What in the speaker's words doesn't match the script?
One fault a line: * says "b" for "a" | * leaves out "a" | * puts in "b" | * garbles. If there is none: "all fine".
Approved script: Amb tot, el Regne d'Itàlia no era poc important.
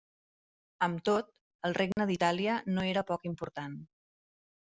all fine